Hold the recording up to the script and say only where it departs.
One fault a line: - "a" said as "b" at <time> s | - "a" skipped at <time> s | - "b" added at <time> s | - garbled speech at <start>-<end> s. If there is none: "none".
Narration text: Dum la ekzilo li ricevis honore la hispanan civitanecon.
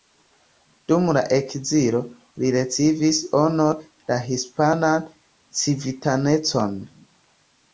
none